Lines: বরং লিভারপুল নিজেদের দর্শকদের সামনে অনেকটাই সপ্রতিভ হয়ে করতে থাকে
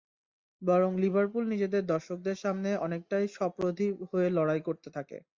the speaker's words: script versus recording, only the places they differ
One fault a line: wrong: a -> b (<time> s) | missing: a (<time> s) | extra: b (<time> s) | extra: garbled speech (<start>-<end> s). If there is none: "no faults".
extra: লড়াই (4.4 s)